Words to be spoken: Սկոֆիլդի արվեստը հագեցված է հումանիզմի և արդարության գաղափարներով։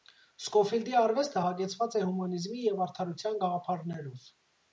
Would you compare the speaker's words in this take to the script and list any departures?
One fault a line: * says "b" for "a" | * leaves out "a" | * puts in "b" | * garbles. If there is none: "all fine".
all fine